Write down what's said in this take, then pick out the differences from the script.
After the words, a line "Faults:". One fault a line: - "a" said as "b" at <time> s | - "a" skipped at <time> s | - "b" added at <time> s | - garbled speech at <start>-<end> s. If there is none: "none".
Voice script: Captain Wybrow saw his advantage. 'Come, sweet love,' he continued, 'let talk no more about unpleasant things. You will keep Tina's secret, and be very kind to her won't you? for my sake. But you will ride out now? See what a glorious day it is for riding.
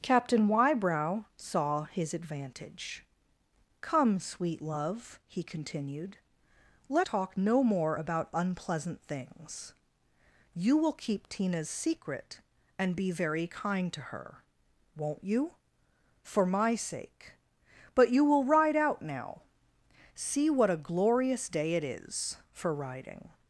Captain Wybrow saw his advantage. 'Come, sweet love,' he continued, 'let talk no more about unpleasant things. You will keep Tina's secret, and be very kind to her won't you? for my sake. But you will ride out now? See what a glorious day it is for riding.
Faults:
none